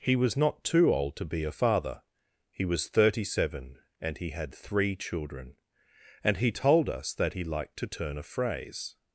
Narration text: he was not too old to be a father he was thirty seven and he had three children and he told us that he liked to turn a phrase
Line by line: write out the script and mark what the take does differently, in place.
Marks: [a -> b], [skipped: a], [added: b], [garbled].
he was not too old to be a father he was thirty seven and he had three children and he told us that he liked to turn a phrase